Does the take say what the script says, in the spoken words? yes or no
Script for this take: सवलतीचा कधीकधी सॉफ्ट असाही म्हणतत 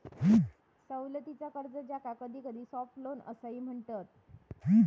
no